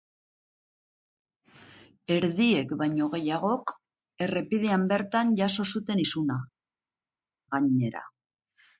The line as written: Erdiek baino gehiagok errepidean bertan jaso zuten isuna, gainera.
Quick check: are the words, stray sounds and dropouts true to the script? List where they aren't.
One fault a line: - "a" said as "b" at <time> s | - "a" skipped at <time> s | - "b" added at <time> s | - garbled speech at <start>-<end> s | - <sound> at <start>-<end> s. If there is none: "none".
none